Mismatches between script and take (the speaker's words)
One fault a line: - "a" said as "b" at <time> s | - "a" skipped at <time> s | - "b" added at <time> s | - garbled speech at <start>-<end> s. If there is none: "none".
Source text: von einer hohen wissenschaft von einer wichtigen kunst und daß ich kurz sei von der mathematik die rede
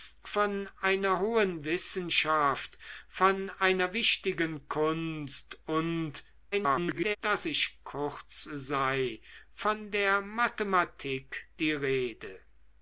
- garbled speech at 6.5-7.2 s